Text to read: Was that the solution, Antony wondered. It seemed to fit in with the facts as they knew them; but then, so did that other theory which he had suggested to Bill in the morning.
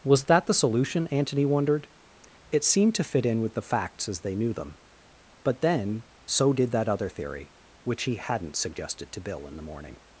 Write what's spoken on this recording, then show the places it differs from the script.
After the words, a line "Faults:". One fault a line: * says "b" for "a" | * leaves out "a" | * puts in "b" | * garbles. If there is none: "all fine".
Was that the solution, Antony wondered. It seemed to fit in with the facts as they knew them; but then, so did that other theory which he hadn't suggested to Bill in the morning.
Faults:
* says "hadn't" for "had"